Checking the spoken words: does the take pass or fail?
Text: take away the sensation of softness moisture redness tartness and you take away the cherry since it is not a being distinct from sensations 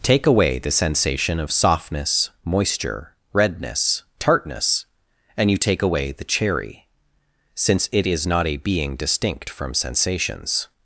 pass